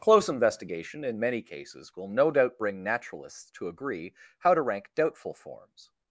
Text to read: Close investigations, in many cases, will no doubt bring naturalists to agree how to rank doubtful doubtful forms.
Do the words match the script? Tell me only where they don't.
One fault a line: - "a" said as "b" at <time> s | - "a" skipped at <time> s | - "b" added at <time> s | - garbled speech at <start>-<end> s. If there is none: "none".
- "investigations" said as "investigation" at 0.3 s
- "doubtful" skipped at 5.3 s